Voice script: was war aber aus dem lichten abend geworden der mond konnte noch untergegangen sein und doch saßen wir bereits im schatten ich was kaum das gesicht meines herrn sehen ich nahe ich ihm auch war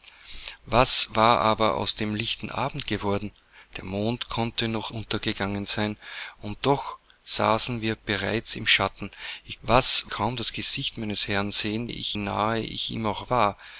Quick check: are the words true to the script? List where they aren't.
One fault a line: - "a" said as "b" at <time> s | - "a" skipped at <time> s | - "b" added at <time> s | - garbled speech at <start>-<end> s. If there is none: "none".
none